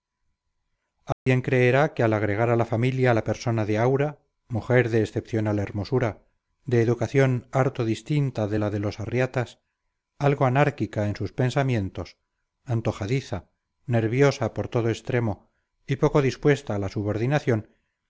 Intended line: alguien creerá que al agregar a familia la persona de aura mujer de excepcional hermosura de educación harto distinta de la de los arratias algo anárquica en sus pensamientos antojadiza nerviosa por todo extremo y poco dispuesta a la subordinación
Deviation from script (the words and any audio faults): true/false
true